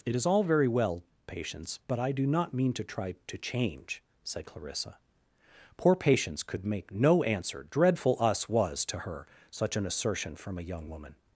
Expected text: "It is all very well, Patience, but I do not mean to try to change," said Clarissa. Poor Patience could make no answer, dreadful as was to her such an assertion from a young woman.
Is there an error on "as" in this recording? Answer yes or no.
yes